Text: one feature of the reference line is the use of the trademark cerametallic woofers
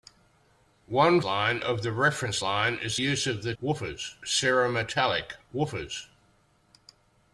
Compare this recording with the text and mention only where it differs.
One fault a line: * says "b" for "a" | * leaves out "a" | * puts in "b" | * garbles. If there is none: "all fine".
* says "line" for "feature"
* leaves out "the"
* says "woofers" for "trademark"